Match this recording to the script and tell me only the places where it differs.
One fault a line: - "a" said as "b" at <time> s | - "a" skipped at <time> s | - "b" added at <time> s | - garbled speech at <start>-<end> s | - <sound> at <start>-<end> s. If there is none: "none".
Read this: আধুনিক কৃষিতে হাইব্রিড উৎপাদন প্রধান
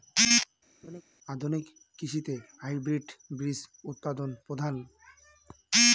- laugh at 0.8-1.0 s
- "বীজ" added at 3.4 s